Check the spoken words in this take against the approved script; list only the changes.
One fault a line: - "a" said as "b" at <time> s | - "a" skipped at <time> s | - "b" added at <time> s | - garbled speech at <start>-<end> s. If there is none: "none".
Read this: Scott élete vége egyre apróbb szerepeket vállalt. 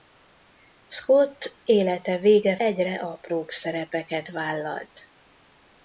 none